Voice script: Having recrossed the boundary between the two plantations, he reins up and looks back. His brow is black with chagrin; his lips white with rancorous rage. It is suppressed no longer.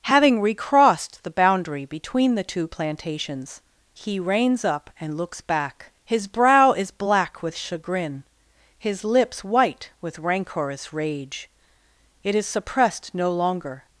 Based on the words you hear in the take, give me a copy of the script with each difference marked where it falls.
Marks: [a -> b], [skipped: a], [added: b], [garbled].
Having recrossed the boundary between the two plantations, he reins up and looks back. His brow is black with chagrin; his lips white with rancorous rage. It is suppressed no longer.